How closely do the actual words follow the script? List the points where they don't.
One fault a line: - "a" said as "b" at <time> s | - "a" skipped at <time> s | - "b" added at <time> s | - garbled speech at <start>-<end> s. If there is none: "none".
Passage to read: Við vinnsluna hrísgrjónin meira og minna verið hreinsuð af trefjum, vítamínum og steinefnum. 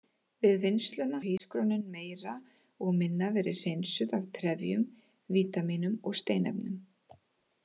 none